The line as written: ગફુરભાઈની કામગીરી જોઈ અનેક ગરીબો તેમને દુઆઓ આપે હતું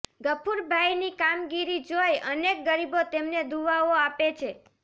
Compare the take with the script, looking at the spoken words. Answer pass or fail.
fail